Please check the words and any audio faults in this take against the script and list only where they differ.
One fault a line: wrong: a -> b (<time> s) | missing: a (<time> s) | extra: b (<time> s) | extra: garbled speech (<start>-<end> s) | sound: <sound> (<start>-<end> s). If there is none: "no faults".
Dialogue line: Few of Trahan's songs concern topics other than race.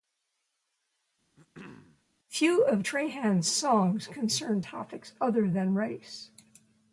sound: throat clearing (1.4-2.0 s)